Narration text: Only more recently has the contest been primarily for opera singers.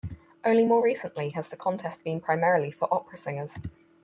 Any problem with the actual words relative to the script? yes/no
no